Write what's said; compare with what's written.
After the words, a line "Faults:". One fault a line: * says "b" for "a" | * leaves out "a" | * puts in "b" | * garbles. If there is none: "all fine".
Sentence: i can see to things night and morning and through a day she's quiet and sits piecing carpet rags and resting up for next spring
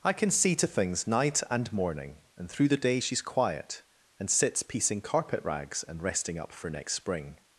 i can see to things night and morning and through the day she's quiet and sits piecing carpet rags and resting up for next spring
Faults:
* says "the" for "a"